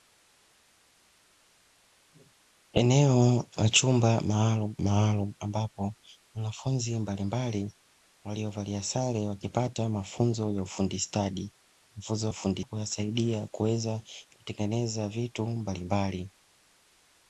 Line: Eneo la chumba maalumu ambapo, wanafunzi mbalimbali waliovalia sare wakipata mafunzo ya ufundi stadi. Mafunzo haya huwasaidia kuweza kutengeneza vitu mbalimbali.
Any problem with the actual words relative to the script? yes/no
yes